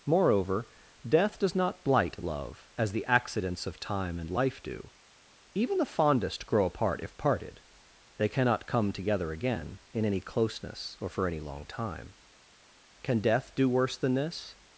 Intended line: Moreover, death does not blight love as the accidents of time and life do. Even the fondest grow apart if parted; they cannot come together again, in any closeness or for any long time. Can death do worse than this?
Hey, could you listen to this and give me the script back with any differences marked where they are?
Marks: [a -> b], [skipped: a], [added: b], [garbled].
Moreover, death does not blight love as the accidents of time and life do. Even the fondest grow apart if parted; they cannot come together again, in any closeness or for any long time. Can death do worse than this?